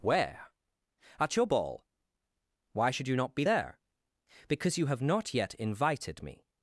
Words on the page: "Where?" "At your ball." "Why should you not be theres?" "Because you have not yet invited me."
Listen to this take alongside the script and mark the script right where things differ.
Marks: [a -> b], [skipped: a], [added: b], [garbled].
"Where?" "At your ball." "Why should you not be [theres?" -> there] "Because you have not yet invited me."